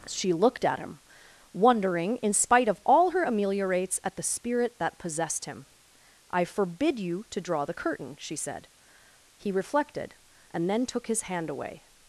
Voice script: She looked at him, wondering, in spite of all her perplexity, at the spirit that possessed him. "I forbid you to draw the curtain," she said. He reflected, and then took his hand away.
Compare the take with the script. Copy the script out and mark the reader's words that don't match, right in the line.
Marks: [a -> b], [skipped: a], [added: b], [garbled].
She looked at him, wondering, in spite of all her [perplexity, -> ameliorates] at the spirit that possessed him. "I forbid you to draw the curtain," she said. He reflected, and then took his hand away.